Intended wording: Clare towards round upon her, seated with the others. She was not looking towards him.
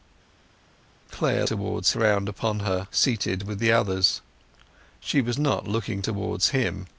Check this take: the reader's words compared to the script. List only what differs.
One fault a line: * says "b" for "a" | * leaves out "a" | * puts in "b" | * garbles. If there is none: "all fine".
all fine